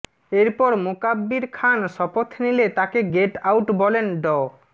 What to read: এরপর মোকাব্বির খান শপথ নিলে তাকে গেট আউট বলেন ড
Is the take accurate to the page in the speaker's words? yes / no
yes